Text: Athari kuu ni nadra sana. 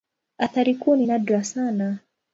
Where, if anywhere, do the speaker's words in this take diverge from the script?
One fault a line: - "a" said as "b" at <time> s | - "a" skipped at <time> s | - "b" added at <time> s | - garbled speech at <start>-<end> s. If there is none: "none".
none